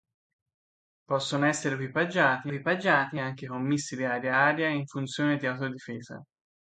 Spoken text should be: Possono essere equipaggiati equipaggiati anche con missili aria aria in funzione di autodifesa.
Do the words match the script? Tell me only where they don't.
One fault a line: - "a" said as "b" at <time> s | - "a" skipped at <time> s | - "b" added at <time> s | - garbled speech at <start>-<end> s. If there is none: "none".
none